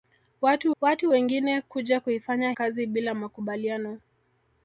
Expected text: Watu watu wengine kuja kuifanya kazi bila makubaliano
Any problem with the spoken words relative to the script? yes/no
no